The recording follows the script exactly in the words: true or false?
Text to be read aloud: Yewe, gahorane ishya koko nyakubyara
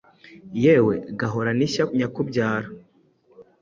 false